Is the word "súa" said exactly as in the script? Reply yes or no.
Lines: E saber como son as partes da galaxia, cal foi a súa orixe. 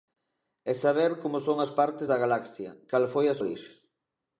no